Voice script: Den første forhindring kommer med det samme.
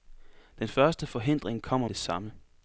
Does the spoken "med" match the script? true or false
false